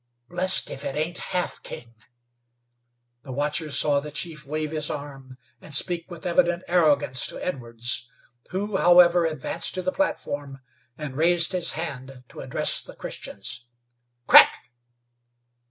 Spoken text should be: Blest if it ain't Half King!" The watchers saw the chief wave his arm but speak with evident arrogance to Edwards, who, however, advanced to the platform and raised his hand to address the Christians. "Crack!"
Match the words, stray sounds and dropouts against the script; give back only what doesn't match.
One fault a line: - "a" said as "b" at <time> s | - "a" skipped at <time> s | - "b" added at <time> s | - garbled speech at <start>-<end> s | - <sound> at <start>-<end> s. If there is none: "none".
- "but" said as "and" at 5.6 s